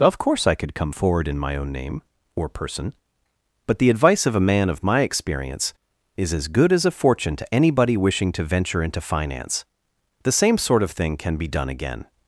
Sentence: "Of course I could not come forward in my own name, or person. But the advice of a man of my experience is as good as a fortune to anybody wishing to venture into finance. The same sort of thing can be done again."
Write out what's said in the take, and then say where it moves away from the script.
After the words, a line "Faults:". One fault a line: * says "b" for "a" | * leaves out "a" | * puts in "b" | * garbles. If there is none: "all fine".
"Of course I could come forward in my own name, or person. But the advice of a man of my experience is as good as a fortune to anybody wishing to venture into finance. The same sort of thing can be done again."
Faults:
* leaves out "not"